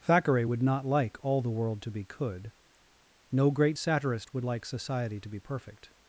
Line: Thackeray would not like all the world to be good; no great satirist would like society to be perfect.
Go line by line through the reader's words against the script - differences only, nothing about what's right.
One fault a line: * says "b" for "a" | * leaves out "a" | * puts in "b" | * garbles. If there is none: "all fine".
* says "could" for "good"